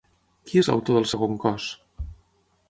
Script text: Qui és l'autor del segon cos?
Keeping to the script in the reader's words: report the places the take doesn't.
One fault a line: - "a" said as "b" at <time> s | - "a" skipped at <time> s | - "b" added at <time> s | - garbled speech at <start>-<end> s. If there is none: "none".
none